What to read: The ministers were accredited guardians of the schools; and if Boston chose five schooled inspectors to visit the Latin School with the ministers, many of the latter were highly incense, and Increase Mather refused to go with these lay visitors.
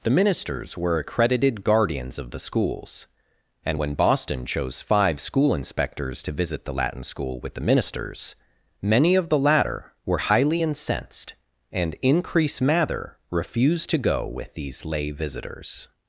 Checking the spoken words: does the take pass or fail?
fail